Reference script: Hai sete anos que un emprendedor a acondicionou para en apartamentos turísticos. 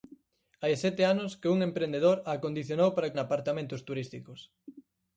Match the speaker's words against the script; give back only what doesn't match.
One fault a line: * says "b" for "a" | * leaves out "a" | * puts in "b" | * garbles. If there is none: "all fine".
all fine